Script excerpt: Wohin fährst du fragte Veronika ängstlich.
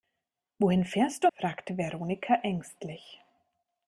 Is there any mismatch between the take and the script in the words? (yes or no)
no